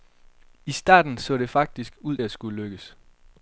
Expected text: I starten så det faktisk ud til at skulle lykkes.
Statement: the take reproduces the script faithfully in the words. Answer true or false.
false